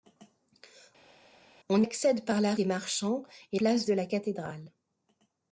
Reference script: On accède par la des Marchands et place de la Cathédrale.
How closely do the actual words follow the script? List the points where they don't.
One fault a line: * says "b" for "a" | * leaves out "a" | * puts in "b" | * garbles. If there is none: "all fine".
all fine